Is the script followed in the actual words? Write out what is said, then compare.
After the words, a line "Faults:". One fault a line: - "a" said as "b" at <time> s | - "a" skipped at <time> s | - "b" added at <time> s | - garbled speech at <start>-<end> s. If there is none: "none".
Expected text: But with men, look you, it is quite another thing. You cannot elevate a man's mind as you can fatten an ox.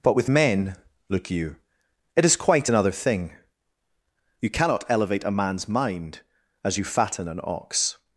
But with men, look you, it is quite another thing. You cannot elevate a man's mind as you fatten an ox.
Faults:
- "can" skipped at 6.8 s